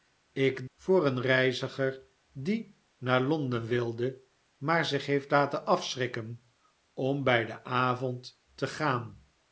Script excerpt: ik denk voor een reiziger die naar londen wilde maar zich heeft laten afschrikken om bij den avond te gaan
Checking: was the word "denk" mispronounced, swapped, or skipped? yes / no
yes